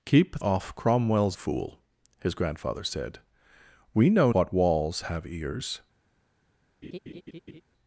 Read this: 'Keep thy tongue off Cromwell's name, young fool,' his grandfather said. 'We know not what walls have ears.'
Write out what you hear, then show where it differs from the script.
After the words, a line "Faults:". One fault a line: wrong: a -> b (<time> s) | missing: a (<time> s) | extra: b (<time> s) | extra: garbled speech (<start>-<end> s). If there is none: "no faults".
'Keep off Cromwell's fool,' his grandfather said. 'We know what walls have ears.'
Faults:
missing: thy tongue (0.4 s)
missing: name young (1.4 s)
missing: not (4.3 s)